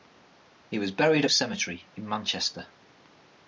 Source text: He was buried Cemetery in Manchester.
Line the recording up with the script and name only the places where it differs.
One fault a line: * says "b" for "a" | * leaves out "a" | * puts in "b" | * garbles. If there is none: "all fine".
all fine